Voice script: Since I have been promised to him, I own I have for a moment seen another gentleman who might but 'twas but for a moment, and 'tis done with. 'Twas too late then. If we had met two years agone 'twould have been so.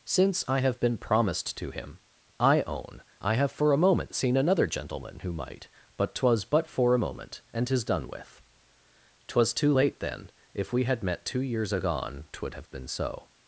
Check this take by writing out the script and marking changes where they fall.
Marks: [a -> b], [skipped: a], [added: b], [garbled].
Since I have been promised to him, I own I have for a moment seen another gentleman who might but 'twas but for a moment, and 'tis done with. 'Twas too late then. If we had met two years agone 'twould have been so.